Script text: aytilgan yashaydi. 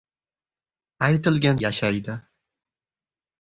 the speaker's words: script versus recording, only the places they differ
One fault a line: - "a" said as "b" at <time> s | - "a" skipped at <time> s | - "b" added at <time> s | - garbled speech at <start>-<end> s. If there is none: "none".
none